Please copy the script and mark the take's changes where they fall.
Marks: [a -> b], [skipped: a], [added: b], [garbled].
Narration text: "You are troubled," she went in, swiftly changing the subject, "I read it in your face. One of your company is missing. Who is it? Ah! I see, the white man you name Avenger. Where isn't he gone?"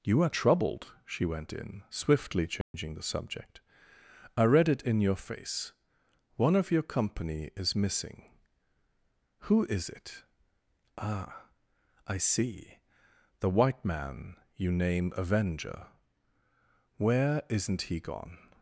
"You are troubled," she went in, swiftly changing the subject, "I read it in your face. One of your company is missing. Who is it? Ah! I see, the white man you name Avenger. Where isn't he gone?"